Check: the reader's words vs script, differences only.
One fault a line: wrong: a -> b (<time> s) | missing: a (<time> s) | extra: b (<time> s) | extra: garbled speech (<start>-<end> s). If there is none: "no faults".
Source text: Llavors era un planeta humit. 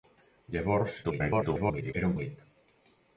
extra: garbled speech (1.0-1.9 s)
missing: planeta (2.2 s)